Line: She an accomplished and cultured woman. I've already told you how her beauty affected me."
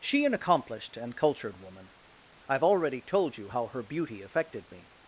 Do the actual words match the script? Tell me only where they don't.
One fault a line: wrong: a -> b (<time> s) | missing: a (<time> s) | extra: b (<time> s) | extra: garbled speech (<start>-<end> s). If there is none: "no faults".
no faults